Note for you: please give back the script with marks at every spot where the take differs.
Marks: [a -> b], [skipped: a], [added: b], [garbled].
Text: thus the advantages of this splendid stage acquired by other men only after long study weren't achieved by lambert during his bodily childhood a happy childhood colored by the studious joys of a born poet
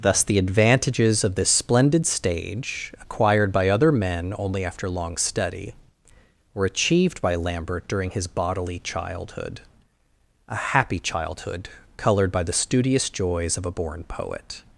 thus the advantages of this splendid stage acquired by other men only after long study [weren't -> were] achieved by lambert during his bodily childhood a happy childhood colored by the studious joys of a born poet